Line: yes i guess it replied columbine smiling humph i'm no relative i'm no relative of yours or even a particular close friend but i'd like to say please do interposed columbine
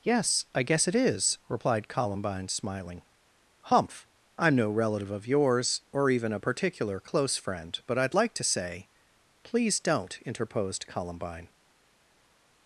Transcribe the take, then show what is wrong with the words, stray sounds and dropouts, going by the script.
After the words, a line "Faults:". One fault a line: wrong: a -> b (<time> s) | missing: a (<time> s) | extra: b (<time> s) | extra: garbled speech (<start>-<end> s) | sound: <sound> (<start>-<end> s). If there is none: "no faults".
yes i guess it is replied columbine smiling humph i'm no relative of yours or even a particular close friend but i'd like to say please don't interposed columbine
Faults:
extra: is (0.9 s)
missing: i'm no relative (5.1 s)
wrong: do -> don't (9.8 s)